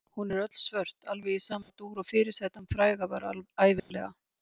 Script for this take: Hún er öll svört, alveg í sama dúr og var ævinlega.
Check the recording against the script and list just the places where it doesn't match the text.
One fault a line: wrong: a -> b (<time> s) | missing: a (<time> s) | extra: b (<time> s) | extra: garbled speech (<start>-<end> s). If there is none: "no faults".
extra: fyrirsætan fræga (2.1 s)